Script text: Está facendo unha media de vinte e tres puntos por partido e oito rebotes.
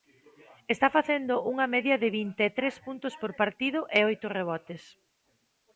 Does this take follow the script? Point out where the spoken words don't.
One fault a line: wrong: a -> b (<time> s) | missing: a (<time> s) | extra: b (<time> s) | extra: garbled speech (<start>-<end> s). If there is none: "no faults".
no faults